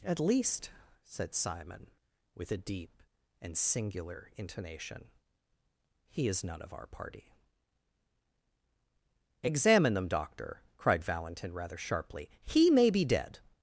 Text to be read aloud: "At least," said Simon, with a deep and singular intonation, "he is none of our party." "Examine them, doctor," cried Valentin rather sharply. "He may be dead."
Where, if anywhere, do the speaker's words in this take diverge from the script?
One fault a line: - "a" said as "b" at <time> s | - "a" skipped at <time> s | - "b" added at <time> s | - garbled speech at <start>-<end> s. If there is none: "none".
none